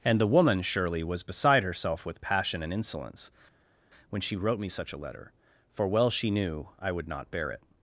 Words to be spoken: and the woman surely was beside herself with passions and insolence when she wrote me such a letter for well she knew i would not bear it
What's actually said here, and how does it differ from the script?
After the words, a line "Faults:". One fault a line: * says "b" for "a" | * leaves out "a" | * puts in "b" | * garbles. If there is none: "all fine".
and the woman surely was beside herself with passion and insolence when she wrote me such a letter for well she knew i would not bear it
Faults:
* says "passion" for "passions"